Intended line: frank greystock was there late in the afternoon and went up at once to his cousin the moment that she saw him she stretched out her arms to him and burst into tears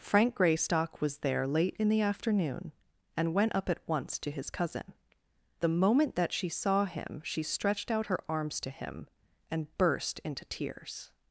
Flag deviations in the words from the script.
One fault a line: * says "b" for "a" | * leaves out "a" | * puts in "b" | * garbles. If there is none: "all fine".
all fine